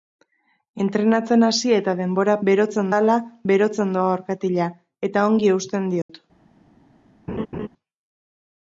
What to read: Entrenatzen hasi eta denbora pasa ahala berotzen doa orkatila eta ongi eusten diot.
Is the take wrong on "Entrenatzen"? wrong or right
right